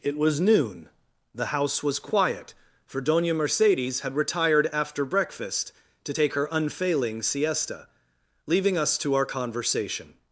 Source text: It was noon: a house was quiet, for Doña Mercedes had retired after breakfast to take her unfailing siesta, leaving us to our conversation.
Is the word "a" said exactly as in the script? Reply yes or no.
no